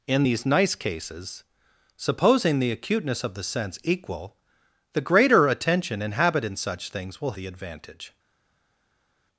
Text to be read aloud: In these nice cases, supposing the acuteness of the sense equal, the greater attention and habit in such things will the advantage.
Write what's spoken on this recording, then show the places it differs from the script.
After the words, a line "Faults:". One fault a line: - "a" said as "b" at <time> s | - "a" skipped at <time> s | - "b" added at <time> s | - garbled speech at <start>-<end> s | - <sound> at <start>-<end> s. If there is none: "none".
In these nice cases, supposing the acuteness of the sense equal, the greater attention and habit in such things will the advantage.
Faults:
none